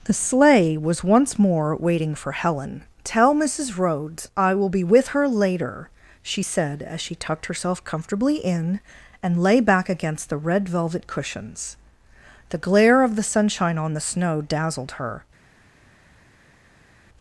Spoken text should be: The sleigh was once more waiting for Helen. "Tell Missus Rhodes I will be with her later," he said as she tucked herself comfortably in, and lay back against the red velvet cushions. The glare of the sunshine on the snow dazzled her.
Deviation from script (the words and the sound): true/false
true